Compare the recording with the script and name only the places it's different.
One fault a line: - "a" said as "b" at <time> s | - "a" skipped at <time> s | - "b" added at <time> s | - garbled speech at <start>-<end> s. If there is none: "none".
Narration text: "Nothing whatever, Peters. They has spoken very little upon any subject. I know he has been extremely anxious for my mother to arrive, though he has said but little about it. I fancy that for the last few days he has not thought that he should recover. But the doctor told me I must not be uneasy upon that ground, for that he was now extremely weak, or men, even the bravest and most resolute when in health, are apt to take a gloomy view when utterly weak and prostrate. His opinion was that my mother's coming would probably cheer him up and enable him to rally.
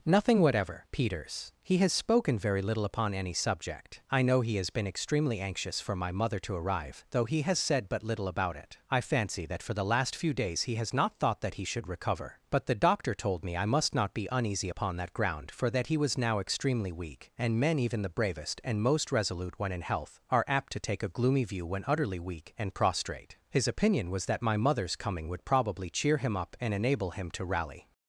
- "They" said as "He" at 1.6 s
- "or" said as "and" at 17.4 s